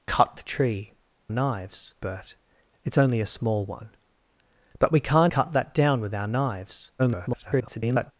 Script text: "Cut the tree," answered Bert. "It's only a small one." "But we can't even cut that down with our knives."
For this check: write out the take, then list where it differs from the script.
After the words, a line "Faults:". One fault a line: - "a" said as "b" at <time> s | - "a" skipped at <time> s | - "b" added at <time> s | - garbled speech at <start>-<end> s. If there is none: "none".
"Cut the tree," knives Bert. "It's only a small one." "But we can't cut that down with our knives." [garbled]
Faults:
- "answered" said as "knives" at 1.3 s
- "even" skipped at 5.3 s
- garbled speech at 7.0-8.1 s